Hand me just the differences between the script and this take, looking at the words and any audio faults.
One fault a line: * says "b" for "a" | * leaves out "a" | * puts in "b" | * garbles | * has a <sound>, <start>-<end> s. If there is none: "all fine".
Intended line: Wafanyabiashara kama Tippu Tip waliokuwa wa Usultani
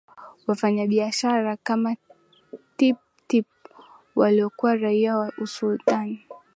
* puts in "raia"